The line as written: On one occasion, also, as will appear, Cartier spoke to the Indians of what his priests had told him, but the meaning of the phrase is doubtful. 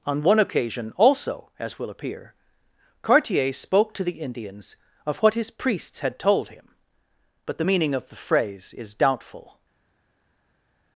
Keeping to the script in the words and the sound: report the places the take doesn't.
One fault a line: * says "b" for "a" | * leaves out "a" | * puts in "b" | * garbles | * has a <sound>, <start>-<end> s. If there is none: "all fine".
all fine